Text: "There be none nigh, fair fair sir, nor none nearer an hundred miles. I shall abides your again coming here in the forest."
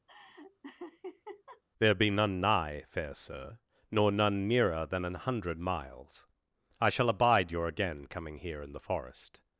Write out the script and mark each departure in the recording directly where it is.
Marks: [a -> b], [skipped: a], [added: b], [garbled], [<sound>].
[laugh] "There be none nigh, fair [skipped: fair] sir, nor none nearer [added: than] an hundred miles. I shall [abides -> abide] your again coming here in the forest."